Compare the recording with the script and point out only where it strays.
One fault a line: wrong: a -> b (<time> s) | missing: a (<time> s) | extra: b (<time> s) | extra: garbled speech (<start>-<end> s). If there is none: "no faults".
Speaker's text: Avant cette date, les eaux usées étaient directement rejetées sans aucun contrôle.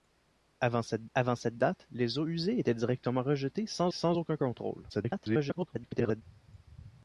extra: avant cette (1.1 s)
extra: sans (3.9 s)
extra: garbled speech (4.9-6.2 s)